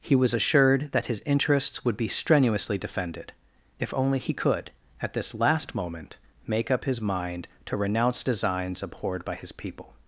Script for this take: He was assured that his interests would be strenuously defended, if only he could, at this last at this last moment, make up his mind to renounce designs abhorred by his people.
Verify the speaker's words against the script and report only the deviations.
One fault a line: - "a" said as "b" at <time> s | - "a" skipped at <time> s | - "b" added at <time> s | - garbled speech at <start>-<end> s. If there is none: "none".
- "at this last" skipped at 5.8 s